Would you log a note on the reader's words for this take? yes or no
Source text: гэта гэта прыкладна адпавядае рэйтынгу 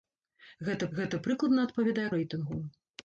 no